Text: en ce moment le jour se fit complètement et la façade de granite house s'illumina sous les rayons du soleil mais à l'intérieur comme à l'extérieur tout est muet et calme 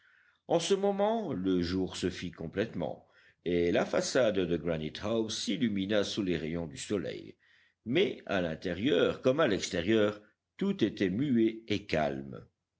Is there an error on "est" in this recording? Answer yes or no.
yes